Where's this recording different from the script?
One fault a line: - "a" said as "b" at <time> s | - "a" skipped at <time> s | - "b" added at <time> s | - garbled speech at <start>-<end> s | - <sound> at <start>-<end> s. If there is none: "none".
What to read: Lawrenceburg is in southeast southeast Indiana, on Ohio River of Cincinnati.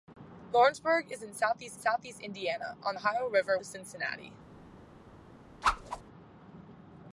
- whoosh at 5.6-6.0 s